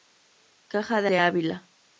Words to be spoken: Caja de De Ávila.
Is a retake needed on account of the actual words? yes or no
no